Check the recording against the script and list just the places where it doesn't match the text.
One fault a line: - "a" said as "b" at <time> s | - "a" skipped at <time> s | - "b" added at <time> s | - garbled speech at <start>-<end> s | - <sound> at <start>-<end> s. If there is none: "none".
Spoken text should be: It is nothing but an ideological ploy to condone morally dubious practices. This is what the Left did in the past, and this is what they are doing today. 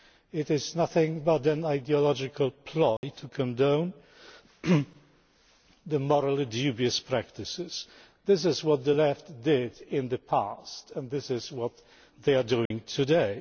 - dropout at 3.0-3.0 s
- dropout at 12.7-12.7 s